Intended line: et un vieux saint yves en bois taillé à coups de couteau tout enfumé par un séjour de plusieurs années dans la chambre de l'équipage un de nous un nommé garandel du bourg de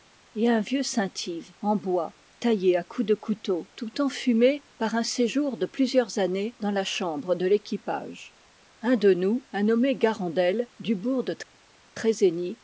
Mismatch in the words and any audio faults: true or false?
false